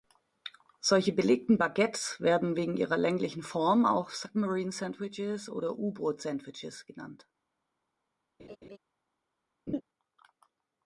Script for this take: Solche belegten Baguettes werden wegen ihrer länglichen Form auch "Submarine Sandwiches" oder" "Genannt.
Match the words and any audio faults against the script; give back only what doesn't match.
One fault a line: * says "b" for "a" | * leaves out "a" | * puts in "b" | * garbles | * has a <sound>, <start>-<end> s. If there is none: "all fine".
* puts in "U Boot Sandwiches"
* has a laugh, 8.4-8.8 s
* has a laugh, 9.7-9.8 s